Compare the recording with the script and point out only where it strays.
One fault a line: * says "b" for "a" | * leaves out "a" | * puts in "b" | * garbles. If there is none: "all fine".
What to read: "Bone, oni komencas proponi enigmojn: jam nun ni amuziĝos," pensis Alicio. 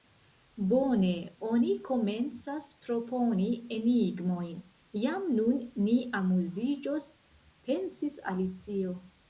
all fine